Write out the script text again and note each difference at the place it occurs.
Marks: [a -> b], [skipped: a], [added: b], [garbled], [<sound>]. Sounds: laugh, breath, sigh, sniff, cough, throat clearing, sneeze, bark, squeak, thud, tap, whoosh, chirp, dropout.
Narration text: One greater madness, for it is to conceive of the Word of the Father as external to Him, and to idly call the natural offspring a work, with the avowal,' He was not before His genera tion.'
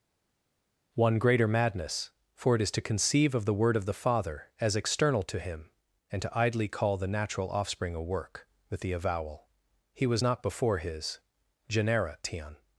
One greater madness, for it is to conceive of the Word of the Father as external to Him, and to idly call the natural offspring a work, with the avowal,' He was not before His genera tion.'